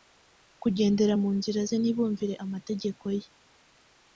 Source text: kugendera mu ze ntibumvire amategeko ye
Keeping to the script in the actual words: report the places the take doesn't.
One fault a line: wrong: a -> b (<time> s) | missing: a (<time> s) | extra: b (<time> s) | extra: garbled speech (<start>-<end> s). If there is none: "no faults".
extra: nzira (1.4 s)